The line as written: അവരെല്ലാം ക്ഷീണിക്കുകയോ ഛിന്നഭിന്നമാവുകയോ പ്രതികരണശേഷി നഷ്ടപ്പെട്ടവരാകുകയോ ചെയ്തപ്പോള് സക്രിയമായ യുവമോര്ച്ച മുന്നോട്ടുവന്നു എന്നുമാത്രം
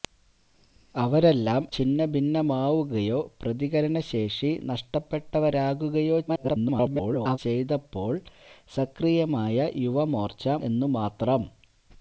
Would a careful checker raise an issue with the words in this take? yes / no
yes